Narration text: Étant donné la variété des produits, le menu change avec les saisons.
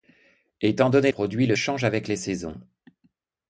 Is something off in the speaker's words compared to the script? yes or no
yes